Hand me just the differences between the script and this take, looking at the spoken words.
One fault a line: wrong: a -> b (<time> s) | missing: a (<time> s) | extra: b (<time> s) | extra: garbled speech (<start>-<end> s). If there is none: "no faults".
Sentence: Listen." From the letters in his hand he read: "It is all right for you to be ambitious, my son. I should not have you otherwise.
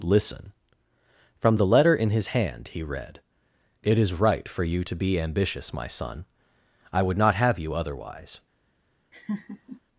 wrong: letters -> letter (1.6 s)
missing: all (4.1 s)
wrong: should -> would (7.0 s)